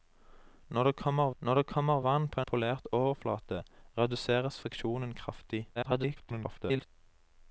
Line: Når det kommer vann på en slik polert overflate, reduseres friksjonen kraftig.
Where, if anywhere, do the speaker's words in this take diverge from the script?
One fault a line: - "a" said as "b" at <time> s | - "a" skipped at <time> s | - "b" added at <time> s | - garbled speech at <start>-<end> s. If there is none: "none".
- "når det kommer" added at 1.4 s
- "en slik" skipped at 2.4 s
- garbled speech at 5.8-6.9 s